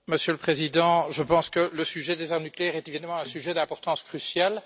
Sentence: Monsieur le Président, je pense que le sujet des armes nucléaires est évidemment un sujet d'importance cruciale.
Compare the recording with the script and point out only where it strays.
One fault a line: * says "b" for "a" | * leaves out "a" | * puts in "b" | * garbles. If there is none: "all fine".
all fine